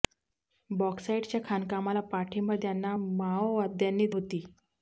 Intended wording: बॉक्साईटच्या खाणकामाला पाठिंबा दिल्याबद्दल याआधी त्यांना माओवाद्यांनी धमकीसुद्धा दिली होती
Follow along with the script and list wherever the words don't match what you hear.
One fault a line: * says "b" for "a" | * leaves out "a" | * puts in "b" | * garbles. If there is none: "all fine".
* leaves out "दिल्याबद्दल याआधी"
* leaves out "धमकीसुद्धा दिली"